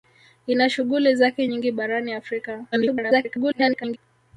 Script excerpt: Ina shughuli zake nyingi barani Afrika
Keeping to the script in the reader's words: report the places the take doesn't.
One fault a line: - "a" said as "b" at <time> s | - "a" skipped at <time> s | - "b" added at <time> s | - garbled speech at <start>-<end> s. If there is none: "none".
- garbled speech at 2.7-4.0 s